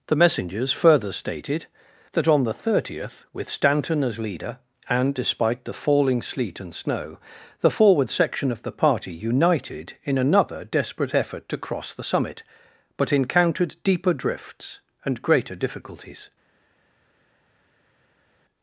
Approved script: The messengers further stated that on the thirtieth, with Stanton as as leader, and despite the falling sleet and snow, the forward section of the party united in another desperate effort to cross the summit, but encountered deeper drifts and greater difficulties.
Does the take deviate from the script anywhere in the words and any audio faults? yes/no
yes